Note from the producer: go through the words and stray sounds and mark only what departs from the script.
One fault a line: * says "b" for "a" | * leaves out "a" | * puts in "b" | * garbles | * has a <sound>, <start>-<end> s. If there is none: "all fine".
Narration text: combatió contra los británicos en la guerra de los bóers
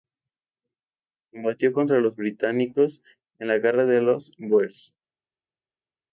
all fine